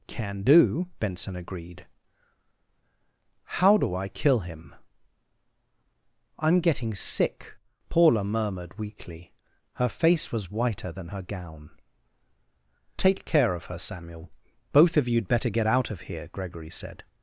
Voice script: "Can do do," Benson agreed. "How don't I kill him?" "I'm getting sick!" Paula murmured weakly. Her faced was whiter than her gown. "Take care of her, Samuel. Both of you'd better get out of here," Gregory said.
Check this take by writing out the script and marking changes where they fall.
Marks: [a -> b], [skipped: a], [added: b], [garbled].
"Can do [skipped: do,"] Benson agreed. "How [don't -> do] I kill him?" "I'm getting sick!" Paula murmured weakly. Her [faced -> face] was whiter than her gown. "Take care of her, Samuel. Both of you'd better get out of here," Gregory said.